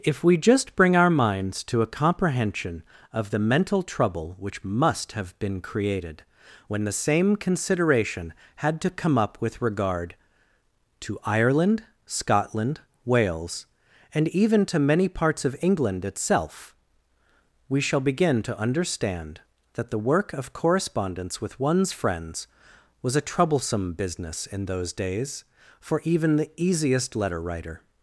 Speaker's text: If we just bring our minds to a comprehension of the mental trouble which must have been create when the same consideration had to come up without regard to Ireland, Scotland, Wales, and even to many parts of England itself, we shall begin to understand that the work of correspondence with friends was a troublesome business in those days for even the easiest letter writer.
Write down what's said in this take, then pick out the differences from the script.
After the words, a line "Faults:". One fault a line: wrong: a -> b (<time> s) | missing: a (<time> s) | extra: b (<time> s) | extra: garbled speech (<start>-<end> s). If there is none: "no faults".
If we just bring our minds to a comprehension of the mental trouble which must have been created when the same consideration had to come up with regard to Ireland, Scotland, Wales, and even to many parts of England itself, we shall begin to understand that the work of correspondence with one's friends was a troublesome business in those days for even the easiest letter writer.
Faults:
wrong: create -> created (5.6 s)
wrong: without -> with (9.4 s)
extra: one's (21.6 s)